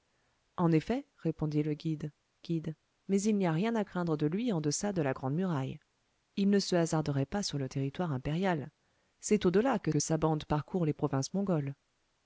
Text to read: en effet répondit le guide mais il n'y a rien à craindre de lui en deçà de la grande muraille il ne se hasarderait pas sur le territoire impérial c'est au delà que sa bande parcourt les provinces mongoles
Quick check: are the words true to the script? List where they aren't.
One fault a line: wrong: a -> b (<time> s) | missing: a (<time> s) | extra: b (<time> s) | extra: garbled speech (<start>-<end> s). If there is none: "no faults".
extra: guide (2.4 s)
extra: que (9.9 s)